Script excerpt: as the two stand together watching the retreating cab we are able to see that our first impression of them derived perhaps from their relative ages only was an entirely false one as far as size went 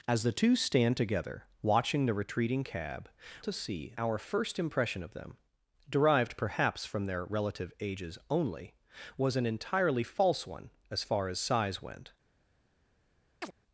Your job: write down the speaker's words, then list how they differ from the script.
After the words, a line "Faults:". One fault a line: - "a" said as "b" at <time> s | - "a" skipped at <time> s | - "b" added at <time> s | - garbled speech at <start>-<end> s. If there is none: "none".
as the two stand together watching the retreating cab to see our first impression of them derived perhaps from their relative ages only was an entirely false one as far as size went
Faults:
- "we are able" skipped at 3.1 s
- "that" skipped at 4.0 s